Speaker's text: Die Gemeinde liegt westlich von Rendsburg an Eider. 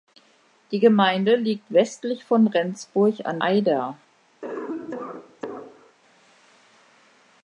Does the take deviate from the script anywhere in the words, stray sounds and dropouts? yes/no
yes